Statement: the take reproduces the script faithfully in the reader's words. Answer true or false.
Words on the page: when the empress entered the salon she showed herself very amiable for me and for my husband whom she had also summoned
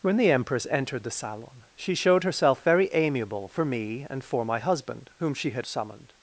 false